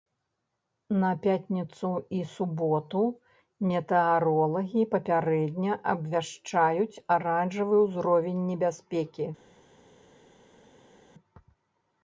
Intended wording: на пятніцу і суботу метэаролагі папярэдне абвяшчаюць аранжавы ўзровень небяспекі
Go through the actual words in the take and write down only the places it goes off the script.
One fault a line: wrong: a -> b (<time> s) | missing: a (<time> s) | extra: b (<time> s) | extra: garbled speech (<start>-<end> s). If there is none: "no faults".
no faults